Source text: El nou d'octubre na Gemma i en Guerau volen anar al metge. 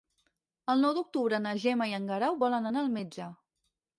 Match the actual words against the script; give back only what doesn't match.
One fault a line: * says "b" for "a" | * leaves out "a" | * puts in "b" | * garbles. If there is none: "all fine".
all fine